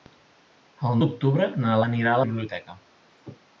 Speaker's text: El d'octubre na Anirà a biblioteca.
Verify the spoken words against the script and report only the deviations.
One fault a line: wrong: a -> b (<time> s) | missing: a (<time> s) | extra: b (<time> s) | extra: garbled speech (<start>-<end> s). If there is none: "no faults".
no faults